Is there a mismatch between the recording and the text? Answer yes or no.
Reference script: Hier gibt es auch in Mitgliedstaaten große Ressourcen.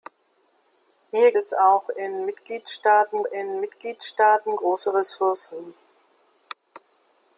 yes